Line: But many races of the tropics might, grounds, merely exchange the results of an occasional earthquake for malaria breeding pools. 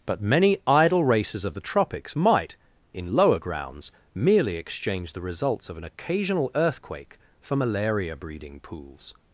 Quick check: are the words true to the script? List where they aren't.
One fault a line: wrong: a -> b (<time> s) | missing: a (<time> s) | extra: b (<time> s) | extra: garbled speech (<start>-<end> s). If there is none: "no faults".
extra: idle (0.7 s)
extra: in lower (2.9 s)